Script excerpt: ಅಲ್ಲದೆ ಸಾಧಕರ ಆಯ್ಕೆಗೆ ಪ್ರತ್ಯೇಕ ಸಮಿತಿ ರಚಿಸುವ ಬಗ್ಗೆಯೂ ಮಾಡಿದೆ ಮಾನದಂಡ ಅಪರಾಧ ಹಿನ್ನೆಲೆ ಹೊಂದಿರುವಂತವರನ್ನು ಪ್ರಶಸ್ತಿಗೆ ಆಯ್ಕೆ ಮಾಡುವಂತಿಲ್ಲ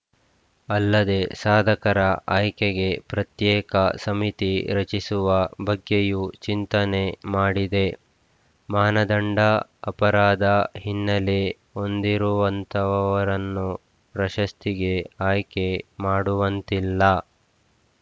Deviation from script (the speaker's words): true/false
true